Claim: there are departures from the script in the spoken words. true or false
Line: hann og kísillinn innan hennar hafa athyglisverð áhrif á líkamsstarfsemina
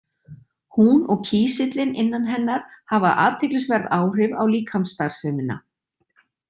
true